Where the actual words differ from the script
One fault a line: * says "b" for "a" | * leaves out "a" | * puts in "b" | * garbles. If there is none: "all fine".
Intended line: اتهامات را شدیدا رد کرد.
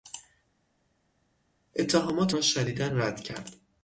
all fine